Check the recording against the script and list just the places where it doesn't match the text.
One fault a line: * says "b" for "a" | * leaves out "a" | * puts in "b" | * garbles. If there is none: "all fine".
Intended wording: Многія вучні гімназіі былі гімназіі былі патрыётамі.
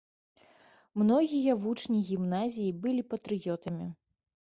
* leaves out "гімназіі былі"